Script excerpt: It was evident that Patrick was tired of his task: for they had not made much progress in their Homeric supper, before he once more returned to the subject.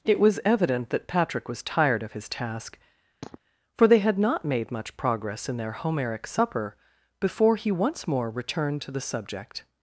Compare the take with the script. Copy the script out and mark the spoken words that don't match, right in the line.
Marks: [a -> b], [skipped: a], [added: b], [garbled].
It was evident that Patrick was tired of his task: for they had not made much progress in their Homeric supper, before he once more returned to the subject.